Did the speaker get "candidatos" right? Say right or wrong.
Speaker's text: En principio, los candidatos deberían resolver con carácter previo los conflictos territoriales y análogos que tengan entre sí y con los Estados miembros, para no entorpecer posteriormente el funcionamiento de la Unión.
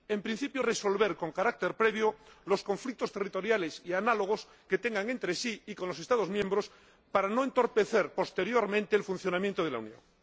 wrong